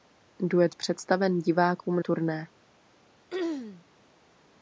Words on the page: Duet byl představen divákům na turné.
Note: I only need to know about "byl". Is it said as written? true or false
false